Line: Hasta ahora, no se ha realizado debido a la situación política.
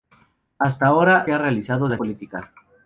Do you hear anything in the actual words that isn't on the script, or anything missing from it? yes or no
yes